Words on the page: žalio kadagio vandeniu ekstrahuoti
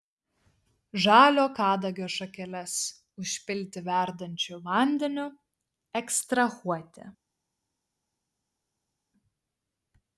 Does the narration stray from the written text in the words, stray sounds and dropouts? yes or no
yes